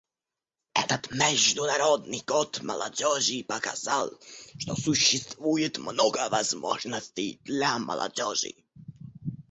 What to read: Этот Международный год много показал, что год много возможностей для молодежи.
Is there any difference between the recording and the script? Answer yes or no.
yes